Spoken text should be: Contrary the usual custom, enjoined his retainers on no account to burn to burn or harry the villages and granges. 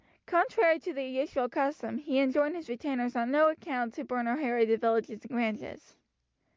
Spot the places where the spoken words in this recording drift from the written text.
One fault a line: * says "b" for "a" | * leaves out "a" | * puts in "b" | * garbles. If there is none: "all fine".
* puts in "to"
* puts in "he"
* leaves out "to burn"